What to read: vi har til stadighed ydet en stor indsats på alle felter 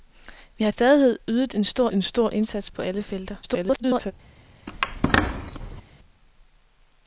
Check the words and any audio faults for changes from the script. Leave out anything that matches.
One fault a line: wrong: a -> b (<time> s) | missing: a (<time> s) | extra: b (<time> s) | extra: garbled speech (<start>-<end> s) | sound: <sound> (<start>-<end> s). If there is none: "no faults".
missing: til (0.7 s)
extra: en stor (1.9 s)
extra: garbled speech (3.4-4.1 s)
sound: squeak (4.7-5.8 s)